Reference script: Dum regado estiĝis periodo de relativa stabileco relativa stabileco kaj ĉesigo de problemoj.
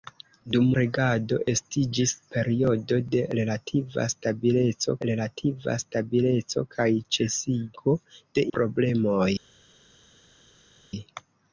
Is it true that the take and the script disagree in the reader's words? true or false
false